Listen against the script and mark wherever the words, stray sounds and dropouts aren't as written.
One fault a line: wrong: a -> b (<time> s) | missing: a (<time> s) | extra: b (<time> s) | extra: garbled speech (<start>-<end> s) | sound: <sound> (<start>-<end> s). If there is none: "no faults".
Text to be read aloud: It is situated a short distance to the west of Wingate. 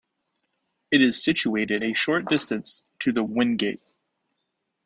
missing: west of (3.2 s)